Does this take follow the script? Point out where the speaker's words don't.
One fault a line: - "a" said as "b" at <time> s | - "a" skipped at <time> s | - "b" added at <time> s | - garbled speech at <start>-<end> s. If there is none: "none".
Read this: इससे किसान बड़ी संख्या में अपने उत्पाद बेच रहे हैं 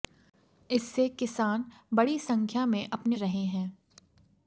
- "उत्पाद बेच" skipped at 3.2 s